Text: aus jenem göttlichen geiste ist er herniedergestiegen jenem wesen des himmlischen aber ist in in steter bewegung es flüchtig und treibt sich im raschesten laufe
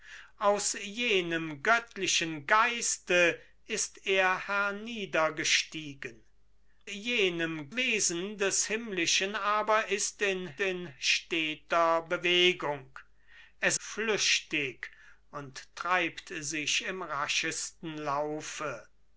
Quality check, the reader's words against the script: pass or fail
pass